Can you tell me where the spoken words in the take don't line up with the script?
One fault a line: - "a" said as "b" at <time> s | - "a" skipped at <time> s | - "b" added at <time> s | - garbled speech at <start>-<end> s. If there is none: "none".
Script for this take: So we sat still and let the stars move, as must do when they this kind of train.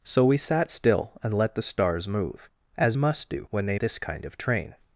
none